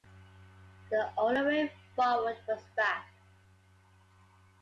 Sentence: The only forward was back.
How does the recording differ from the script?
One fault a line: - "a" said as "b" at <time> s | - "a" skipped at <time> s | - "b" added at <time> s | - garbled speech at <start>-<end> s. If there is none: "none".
- "way" added at 1.4 s